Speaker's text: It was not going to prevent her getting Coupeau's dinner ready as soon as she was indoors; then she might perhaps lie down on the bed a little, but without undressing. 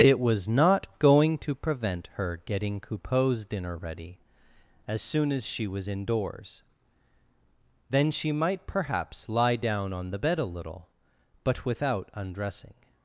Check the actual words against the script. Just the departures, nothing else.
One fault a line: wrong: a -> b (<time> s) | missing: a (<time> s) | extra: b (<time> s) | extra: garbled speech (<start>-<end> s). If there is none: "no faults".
no faults